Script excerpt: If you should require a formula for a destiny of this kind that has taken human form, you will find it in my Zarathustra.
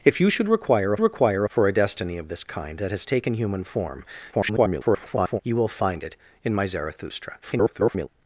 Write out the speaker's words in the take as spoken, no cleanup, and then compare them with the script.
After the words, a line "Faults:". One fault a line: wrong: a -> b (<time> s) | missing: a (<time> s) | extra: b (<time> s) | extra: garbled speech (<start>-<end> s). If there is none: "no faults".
If you should require a require for a destiny of this kind that has taken human form, [garbled] you will find it in my Zarathustra. [garbled]
Faults:
wrong: formula -> require (1.0 s)
extra: garbled speech (4.3-5.4 s)
extra: garbled speech (7.4-8.1 s)